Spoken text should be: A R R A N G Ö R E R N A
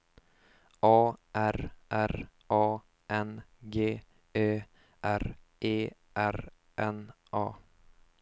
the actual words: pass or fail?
pass